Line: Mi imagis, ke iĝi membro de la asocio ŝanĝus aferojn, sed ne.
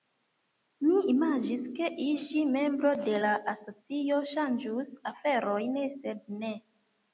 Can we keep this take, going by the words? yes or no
yes